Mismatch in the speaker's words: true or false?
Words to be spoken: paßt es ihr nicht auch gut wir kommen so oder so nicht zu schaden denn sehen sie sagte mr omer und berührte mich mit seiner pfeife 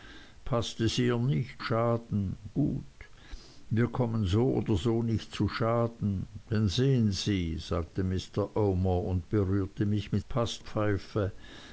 true